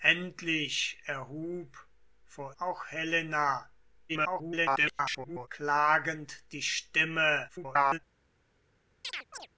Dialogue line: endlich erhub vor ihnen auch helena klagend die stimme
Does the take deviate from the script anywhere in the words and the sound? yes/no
yes